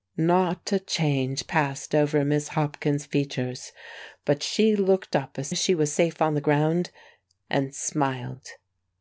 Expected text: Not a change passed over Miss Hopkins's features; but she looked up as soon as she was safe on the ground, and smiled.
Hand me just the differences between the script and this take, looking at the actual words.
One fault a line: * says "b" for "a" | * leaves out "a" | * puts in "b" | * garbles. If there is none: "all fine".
* leaves out "soon"